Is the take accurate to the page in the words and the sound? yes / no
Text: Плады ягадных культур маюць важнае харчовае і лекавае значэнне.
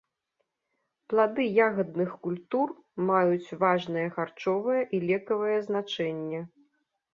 yes